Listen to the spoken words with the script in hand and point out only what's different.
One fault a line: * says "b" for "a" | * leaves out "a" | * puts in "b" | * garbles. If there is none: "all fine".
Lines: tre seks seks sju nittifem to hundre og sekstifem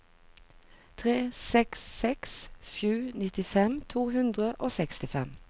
all fine